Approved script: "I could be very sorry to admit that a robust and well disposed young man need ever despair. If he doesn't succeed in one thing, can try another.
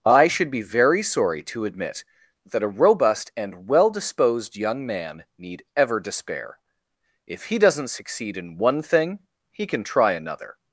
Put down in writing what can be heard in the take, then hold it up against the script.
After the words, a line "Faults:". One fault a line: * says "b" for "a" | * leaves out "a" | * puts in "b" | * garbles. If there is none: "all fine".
"I should be very sorry to admit that a robust and well disposed young man need ever despair. If he doesn't succeed in one thing, he can try another.
Faults:
* says "should" for "could"
* puts in "he"